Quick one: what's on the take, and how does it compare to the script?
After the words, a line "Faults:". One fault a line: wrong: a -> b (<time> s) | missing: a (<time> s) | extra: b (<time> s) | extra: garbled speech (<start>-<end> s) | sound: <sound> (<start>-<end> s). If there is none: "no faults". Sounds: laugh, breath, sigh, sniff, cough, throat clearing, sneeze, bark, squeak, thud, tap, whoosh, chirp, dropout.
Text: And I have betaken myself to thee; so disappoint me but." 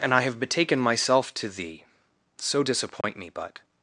And I have betaken myself to thee; so disappoint me but."
Faults:
sound: dropout (3.0-3.0 s)